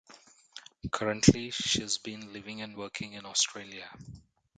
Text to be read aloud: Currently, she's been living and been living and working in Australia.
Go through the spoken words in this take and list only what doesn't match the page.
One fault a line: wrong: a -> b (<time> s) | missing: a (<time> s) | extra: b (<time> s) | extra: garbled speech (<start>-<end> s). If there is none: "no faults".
missing: been living and (2.8 s)